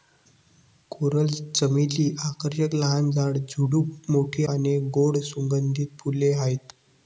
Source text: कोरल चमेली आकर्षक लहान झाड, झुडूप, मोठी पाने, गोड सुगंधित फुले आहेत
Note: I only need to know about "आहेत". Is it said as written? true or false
true